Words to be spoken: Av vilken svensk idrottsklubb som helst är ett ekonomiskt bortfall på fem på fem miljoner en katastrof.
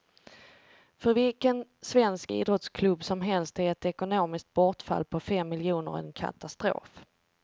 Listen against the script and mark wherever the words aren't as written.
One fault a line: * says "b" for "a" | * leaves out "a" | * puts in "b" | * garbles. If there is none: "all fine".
* says "För" for "Av"
* leaves out "på fem"